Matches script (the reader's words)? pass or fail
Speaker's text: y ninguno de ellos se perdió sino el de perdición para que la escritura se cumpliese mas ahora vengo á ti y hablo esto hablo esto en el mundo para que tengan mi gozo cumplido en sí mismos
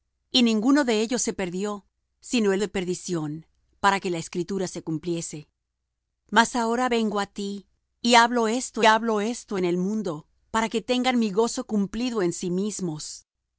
pass